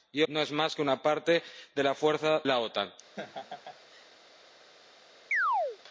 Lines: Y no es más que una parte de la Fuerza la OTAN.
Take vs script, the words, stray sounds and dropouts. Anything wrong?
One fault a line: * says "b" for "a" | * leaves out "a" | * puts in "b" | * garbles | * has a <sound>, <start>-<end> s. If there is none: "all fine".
* has a laugh, 3.2-4.1 s
* has a chirp, 5.3-5.8 s